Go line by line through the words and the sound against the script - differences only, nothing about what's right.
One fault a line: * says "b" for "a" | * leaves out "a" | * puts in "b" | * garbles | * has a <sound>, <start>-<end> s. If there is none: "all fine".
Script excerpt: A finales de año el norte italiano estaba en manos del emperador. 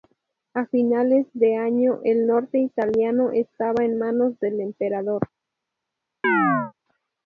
* has a chirp, 6.2-6.7 s